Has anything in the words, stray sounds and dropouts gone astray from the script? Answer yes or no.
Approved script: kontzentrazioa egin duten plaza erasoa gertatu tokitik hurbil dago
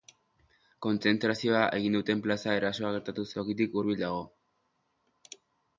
no